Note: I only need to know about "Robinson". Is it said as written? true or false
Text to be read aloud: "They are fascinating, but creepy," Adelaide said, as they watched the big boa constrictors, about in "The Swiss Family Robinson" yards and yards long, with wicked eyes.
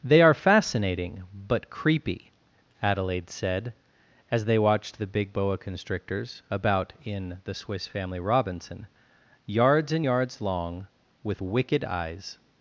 true